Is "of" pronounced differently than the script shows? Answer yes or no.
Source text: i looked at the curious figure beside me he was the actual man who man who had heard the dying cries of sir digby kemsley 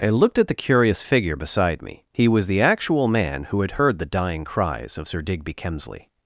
no